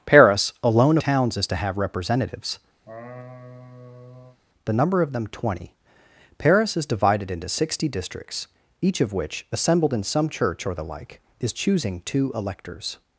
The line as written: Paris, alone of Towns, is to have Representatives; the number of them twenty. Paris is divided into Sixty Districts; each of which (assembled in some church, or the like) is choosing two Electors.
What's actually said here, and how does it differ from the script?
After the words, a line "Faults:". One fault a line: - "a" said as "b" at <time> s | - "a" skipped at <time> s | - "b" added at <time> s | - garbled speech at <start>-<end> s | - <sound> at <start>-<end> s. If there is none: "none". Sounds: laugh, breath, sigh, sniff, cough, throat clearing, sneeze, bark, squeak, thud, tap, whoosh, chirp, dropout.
Paris, alone Towns, is to have Representatives; the number of them twenty. Paris is divided into Sixty Districts; each of which (assembled in some church, or the like) is choosing two Electors.
Faults:
- "of" skipped at 1.0 s
- laugh at 2.8-4.4 s